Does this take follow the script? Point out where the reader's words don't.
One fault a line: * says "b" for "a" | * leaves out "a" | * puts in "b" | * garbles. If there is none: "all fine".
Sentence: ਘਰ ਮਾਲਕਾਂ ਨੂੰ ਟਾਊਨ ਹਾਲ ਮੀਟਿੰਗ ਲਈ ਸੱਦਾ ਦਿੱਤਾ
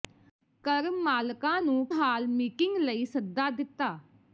* leaves out "ਟਾਊਨ"